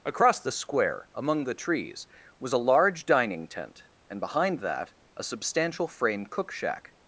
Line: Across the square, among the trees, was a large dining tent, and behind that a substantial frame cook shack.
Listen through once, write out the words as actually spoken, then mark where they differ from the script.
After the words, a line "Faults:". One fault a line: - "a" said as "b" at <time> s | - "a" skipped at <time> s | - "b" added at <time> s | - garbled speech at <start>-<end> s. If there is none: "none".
Across the square, among the trees, was a large dining tent, and behind that a substantial frame cook shack.
Faults:
none